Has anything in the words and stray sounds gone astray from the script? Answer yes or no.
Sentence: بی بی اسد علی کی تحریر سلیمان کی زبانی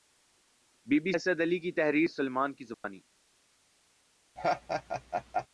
yes